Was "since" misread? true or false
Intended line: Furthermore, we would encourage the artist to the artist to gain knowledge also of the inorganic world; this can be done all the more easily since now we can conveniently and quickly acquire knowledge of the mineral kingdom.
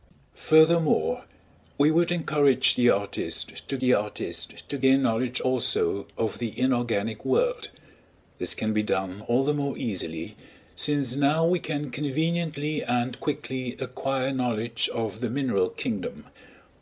false